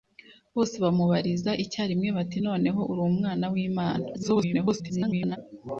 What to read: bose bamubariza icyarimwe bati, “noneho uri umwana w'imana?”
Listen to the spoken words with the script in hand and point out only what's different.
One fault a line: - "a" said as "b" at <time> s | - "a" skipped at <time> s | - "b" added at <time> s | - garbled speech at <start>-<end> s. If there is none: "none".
- garbled speech at 4.1-5.4 s